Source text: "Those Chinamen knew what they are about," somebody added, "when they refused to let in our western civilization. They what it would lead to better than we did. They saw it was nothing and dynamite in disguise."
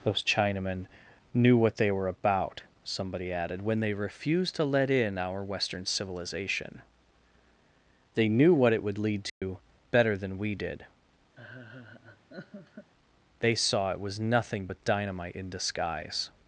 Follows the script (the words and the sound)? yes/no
no